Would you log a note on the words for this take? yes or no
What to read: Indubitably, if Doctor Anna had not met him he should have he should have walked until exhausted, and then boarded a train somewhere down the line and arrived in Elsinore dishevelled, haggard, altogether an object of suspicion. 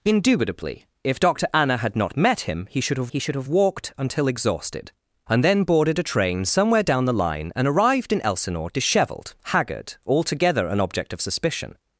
no